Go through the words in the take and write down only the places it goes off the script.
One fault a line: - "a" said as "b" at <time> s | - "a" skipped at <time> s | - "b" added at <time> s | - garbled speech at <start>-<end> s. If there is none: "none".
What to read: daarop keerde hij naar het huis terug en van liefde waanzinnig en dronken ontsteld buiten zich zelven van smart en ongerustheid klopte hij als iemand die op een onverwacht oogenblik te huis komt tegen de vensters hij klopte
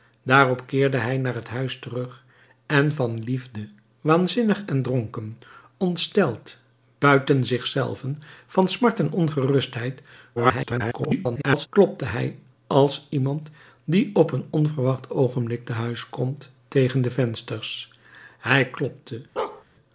- garbled speech at 10.4-11.7 s